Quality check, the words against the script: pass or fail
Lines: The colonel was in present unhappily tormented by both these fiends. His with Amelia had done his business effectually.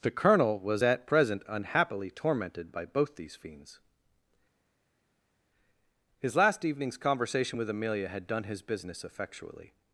fail